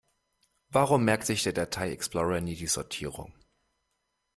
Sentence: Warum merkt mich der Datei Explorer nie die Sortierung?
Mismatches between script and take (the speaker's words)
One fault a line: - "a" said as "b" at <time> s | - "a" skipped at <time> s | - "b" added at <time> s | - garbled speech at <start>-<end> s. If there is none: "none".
- "mich" said as "sich" at 1.3 s